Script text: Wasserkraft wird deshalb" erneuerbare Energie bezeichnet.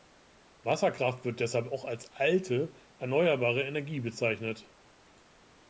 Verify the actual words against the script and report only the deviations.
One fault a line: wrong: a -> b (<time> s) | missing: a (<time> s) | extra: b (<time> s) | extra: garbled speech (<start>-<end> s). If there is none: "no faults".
extra: auch als alte (1.7 s)